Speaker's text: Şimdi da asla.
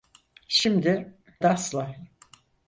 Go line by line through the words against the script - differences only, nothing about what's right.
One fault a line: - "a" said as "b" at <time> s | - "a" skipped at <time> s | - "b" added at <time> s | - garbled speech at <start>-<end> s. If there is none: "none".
none